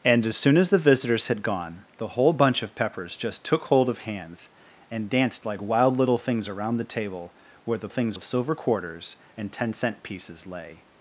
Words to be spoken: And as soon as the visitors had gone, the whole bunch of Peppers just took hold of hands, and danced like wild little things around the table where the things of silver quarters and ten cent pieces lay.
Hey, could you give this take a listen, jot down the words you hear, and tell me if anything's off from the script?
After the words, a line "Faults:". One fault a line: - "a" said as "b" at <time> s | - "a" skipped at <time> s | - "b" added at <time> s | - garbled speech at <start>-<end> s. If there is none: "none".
And as soon as the visitors had gone, the whole bunch of Peppers just took hold of hands, and danced like wild little things around the table where the things of silver quarters and ten cent pieces lay.
Faults:
none